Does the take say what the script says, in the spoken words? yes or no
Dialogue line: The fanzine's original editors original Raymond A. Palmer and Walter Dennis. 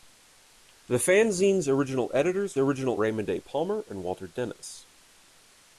yes